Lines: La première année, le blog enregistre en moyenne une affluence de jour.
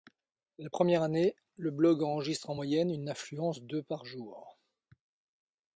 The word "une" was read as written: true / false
true